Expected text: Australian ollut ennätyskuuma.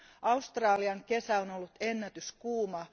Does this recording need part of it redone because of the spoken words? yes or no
yes